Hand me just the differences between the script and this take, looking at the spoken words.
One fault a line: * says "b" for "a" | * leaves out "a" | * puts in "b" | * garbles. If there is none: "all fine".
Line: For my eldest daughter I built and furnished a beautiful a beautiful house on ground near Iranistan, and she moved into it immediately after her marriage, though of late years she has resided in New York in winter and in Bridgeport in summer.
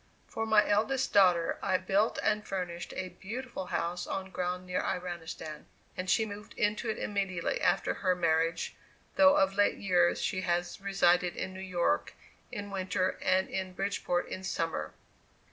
* leaves out "a beautiful"